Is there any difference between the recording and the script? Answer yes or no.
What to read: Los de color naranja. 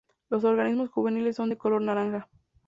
yes